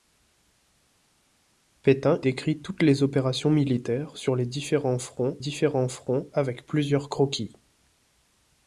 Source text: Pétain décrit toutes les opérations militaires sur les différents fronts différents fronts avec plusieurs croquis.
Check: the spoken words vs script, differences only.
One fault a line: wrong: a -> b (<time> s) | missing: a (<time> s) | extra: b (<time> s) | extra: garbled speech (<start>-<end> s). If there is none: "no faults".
no faults